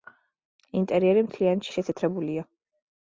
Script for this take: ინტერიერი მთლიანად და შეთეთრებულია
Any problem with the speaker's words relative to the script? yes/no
no